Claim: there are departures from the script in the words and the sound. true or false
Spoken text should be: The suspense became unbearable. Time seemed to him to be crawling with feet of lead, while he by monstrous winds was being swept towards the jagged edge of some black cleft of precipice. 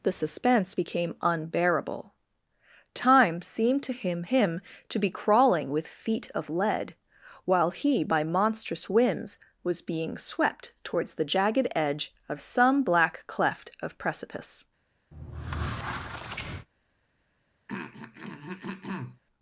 true